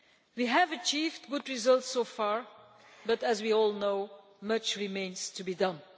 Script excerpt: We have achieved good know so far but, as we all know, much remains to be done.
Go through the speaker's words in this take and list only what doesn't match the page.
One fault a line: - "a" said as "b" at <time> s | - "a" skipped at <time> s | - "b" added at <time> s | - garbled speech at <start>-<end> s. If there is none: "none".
- "know" said as "results" at 1.5 s